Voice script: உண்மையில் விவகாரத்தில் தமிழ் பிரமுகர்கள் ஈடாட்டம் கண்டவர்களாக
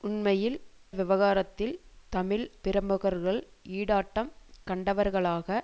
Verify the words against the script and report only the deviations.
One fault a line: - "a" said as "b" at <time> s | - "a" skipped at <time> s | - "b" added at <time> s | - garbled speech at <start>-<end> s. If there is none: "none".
none